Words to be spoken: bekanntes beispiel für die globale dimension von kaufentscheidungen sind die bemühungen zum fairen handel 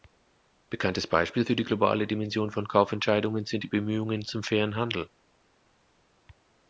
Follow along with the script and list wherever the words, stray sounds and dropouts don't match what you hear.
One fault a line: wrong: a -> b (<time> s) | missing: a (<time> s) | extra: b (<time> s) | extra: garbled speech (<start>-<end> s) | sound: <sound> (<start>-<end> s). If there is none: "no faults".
no faults